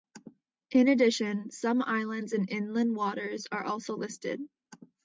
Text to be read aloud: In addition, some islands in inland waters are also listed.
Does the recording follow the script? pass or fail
pass